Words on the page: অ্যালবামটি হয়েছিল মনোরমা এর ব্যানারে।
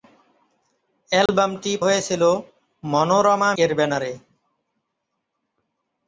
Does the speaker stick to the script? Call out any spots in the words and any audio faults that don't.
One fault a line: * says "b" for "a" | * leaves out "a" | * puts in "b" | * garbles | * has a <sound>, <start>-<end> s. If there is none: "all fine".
* has a dropout, 1.3-1.3 s